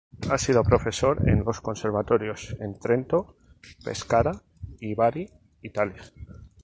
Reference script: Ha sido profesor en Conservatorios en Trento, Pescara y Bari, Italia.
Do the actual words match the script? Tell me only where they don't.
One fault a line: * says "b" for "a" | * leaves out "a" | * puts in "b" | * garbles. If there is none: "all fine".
* puts in "los"